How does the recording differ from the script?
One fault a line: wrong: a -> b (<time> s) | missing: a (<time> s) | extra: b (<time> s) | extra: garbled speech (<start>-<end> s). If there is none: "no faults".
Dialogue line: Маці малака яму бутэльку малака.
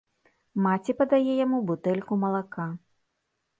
wrong: малака -> падае (1.0 s)